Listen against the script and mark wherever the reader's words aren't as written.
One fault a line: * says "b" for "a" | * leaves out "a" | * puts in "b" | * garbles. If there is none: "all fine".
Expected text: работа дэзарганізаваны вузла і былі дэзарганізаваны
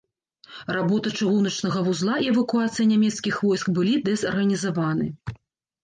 * says "чыгуначнага" for "дэзарганізаваны"
* puts in "эвакуацыя нямецкіх войск"